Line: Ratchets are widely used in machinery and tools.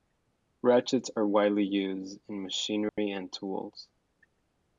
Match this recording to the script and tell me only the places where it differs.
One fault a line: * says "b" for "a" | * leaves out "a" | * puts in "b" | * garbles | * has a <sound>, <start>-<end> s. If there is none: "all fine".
* has a dropout, 2.9-3.0 s